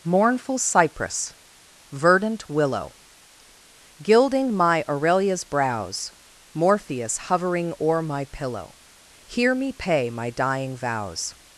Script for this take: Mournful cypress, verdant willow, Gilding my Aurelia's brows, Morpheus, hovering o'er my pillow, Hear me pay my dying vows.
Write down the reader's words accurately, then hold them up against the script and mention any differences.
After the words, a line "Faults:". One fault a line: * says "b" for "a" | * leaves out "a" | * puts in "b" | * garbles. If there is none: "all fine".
Mournful cypress, verdant willow, Gilding my Aurelia's brows, Morpheus, hovering o'er my pillow, Hear me pay my dying vows.
Faults:
all fine